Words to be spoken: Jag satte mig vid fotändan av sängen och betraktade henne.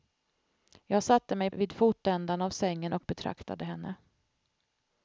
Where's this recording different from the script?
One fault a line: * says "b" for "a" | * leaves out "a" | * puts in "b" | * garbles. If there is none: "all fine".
all fine